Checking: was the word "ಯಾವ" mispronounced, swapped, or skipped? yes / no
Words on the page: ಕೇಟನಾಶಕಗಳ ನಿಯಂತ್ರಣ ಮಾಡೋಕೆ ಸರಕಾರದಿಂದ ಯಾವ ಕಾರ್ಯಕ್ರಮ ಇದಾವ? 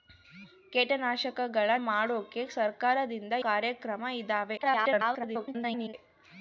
yes